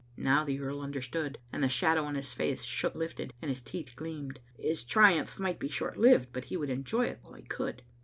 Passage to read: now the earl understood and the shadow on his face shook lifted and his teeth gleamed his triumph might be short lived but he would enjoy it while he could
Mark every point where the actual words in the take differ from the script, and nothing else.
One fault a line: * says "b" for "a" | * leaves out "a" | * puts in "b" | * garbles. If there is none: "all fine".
all fine